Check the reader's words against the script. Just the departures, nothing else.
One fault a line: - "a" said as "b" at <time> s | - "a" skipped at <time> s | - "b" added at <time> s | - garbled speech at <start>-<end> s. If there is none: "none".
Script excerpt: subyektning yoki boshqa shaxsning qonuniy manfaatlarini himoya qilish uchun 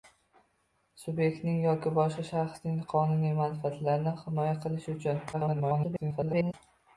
- garbled speech at 5.3-6.5 s